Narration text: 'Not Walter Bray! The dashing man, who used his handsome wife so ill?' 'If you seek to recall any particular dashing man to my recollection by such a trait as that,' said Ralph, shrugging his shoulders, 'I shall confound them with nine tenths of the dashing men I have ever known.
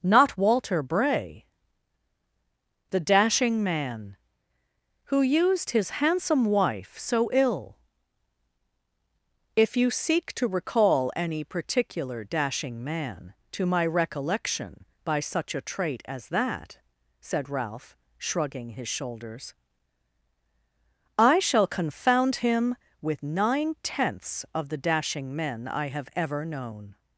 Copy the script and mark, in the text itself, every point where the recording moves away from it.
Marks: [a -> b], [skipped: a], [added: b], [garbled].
'Not Walter Bray! The dashing man, who used his handsome wife so ill?' 'If you seek to recall any particular dashing man to my recollection by such a trait as that,' said Ralph, shrugging his shoulders, 'I shall confound [them -> him] with nine tenths of the dashing men I have ever known.